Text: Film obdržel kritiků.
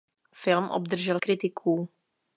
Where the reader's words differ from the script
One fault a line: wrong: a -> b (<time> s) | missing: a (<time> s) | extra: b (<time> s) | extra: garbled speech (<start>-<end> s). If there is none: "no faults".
no faults